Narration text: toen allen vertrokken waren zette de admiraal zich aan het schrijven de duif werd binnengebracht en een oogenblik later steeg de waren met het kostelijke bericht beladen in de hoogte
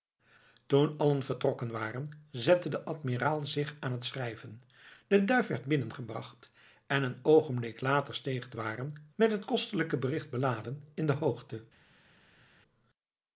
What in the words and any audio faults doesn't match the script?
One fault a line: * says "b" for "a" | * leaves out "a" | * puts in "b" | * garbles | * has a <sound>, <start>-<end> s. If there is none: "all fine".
all fine